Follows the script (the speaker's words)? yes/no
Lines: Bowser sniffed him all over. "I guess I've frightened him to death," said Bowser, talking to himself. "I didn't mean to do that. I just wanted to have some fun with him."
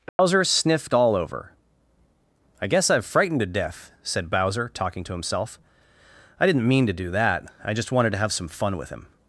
no